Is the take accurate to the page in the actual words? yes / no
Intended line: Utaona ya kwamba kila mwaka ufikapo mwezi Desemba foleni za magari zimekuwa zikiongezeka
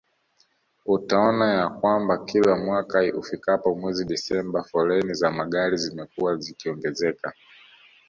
yes